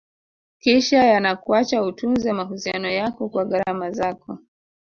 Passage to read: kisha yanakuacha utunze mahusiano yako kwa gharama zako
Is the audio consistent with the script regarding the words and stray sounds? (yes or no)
yes